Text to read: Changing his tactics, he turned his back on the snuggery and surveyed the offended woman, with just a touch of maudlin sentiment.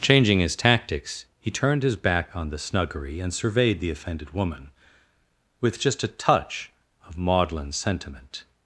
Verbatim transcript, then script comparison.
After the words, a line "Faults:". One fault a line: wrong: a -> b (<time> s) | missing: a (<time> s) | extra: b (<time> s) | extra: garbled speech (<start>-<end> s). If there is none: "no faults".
Changing his tactics, he turned his back on the snuggery and surveyed the offended woman, with just a touch of maudlin sentiment.
Faults:
no faults